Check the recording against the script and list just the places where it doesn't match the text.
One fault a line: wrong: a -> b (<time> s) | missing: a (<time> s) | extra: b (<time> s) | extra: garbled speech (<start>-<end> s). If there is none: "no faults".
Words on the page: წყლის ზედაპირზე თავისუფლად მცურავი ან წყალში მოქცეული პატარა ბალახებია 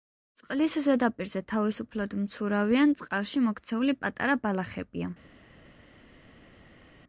no faults